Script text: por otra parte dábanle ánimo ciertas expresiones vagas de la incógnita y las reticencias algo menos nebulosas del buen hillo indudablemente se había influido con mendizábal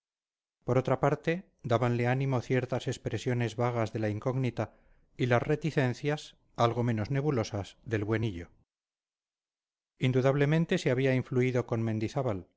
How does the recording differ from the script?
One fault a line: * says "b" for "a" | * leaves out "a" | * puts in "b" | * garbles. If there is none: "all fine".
all fine